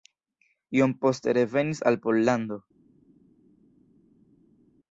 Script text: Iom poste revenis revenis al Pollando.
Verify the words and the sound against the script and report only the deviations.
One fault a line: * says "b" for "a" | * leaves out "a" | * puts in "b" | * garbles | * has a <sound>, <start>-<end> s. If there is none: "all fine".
* leaves out "revenis"